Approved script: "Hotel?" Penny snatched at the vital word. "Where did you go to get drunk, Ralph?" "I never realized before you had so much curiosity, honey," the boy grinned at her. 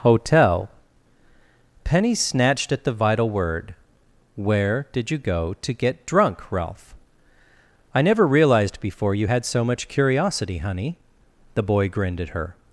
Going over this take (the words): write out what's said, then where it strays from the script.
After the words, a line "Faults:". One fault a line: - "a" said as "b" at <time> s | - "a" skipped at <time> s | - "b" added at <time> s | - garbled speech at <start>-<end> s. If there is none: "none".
"Hotel?" Penny snatched at the vital word. "Where did you go to get drunk, Ralph?" "I never realized before you had so much curiosity, honey," the boy grinned at her.
Faults:
none